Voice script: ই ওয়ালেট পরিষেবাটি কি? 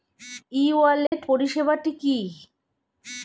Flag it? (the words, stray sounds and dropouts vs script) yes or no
yes